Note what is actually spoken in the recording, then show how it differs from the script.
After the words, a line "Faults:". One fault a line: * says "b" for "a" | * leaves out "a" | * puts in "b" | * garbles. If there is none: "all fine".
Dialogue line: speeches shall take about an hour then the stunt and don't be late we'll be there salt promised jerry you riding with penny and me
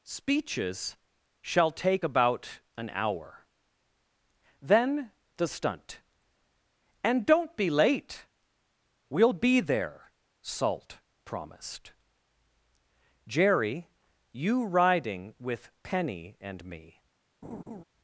speeches shall take about an hour then the stunt and don't be late we'll be there salt promised jerry you riding with penny and me
Faults:
all fine